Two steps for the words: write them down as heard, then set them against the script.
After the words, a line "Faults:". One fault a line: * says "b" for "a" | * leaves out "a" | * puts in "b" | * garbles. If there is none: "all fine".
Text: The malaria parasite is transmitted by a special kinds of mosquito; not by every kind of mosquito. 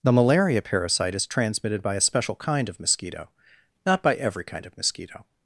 The malaria parasite is transmitted by a special kind of mosquito; not by every kind of mosquito.
Faults:
* says "kind" for "kinds"